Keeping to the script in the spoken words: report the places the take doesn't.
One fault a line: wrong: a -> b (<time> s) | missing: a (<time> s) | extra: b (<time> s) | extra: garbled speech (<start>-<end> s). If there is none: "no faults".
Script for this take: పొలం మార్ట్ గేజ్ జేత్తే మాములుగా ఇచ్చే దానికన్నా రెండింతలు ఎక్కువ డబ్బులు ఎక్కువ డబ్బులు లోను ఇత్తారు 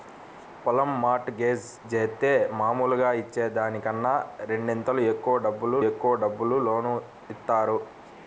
no faults